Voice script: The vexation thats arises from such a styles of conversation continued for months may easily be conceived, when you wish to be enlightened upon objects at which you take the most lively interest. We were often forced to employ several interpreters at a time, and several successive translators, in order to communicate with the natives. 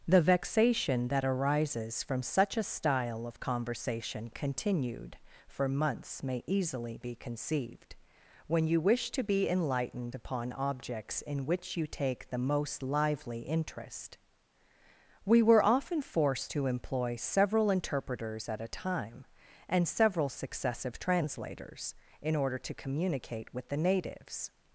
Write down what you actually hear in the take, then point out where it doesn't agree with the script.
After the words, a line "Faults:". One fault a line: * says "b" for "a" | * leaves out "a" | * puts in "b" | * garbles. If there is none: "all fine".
The vexation that arises from such a style of conversation continued for months may easily be conceived, when you wish to be enlightened upon objects in which you take the most lively interest. We were often forced to employ several interpreters at a time, and several successive translators, in order to communicate with the natives.
Faults:
* says "that" for "thats"
* says "style" for "styles"
* says "in" for "at"